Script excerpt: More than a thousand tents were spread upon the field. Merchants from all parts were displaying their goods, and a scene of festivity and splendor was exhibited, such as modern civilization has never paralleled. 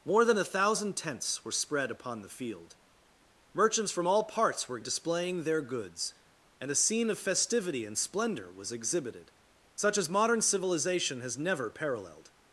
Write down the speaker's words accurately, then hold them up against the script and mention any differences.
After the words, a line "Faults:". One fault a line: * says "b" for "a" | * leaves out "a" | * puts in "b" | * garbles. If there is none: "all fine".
More than a thousand tents were spread upon the field. Merchants from all parts were displaying their goods, and a scene of festivity and splendor was exhibited, such as modern civilization has never paralleled.
Faults:
all fine